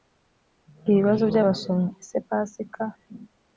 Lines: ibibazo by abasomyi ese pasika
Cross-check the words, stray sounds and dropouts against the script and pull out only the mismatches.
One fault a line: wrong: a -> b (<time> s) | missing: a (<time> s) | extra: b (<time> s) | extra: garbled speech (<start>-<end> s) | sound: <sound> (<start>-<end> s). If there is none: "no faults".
no faults